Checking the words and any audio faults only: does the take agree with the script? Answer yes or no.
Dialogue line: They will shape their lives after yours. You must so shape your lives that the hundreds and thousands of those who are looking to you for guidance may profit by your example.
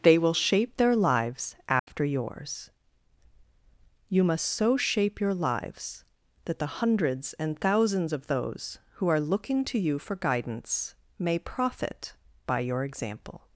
no